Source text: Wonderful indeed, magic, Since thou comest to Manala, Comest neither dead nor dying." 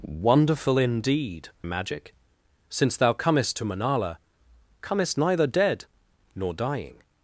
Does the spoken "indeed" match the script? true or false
true